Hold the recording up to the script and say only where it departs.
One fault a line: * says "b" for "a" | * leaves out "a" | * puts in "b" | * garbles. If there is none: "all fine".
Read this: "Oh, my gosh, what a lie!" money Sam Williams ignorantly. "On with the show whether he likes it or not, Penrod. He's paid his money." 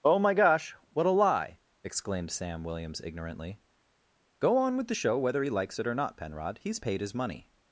* says "exclaimed" for "money"
* puts in "Go"